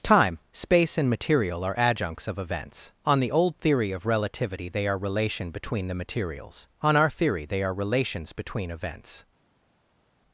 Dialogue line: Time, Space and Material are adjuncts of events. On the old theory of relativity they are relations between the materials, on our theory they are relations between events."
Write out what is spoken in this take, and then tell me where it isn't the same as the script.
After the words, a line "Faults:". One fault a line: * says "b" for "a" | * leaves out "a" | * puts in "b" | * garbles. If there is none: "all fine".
Time, Space and Material are adjuncts of events. On the old theory of relativity they are relation between the materials, on our theory they are relations between events."
Faults:
* says "relation" for "relations"